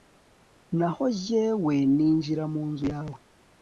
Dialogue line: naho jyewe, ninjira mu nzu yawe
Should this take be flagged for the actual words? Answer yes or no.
no